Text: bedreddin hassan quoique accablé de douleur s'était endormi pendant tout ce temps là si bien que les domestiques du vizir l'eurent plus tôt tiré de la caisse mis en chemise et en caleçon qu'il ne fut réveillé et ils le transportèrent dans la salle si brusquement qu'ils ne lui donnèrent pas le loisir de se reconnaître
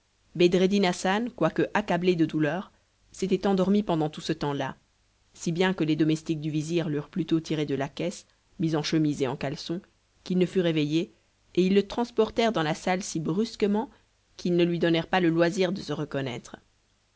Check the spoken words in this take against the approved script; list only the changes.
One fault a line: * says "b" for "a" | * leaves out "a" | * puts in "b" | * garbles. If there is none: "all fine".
all fine